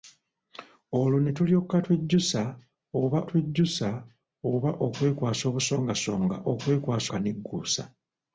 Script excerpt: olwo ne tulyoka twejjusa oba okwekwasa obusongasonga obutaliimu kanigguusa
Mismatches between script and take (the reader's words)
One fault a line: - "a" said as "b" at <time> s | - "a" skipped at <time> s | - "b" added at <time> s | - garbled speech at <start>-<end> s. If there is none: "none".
- "twejjusa oba" added at 3.3 s
- "obutaliimu" said as "okwekwasa" at 6.5 s